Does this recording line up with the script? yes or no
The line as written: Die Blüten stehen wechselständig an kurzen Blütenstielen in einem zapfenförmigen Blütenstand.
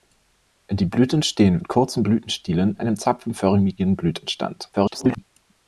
no